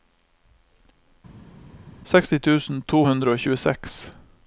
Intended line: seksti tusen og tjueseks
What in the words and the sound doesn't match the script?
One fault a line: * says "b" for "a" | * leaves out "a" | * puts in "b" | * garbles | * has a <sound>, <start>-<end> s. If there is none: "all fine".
* puts in "to hundre"